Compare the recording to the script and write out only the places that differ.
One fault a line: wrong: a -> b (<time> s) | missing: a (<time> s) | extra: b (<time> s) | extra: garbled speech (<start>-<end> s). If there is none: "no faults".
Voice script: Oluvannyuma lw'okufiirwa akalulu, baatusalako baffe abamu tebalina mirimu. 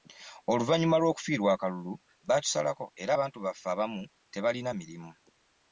extra: era abantu (3.0 s)